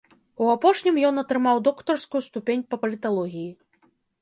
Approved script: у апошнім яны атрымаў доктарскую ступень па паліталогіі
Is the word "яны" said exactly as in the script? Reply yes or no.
no